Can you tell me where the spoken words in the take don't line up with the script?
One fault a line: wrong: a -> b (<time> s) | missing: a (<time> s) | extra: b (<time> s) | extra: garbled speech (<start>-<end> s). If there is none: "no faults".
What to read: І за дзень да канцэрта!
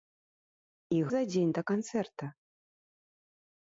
no faults